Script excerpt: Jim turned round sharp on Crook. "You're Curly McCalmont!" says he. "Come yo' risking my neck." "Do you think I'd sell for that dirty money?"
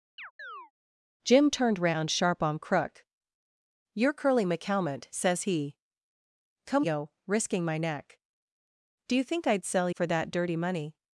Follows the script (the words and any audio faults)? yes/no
no